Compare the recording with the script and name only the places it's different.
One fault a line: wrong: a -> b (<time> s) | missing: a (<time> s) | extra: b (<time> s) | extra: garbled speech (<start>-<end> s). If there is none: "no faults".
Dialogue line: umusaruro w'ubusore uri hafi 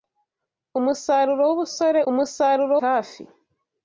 wrong: uri -> umusaruro (2.1 s)